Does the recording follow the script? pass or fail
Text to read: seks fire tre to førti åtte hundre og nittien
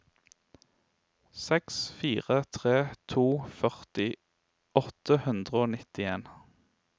pass